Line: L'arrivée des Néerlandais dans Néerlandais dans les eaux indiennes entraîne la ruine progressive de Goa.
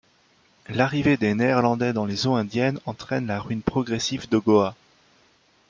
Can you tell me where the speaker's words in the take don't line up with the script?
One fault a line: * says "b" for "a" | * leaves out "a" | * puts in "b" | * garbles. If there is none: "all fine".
* leaves out "Néerlandais dans"